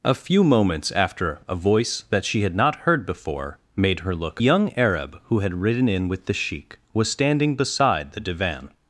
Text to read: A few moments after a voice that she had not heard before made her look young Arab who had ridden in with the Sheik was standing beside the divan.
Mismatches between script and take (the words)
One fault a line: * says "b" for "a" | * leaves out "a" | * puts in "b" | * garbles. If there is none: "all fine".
all fine